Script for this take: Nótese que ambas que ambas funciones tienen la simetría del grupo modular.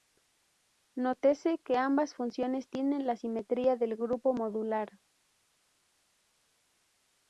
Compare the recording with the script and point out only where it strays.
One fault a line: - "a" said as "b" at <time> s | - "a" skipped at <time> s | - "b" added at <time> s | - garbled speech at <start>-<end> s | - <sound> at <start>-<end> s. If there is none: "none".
- "que ambas" skipped at 2.1 s